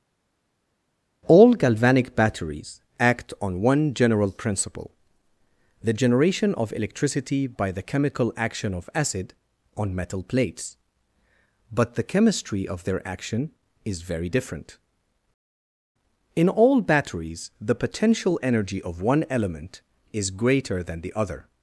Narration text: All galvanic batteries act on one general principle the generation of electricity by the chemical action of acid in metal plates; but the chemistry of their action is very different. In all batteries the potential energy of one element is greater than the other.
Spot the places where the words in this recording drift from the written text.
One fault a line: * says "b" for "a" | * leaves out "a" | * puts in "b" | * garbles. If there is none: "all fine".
* says "on" for "in"